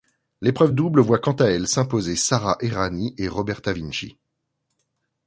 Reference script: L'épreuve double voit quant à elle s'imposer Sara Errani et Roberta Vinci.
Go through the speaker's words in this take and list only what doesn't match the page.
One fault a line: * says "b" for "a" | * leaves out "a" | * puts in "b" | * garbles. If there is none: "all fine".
all fine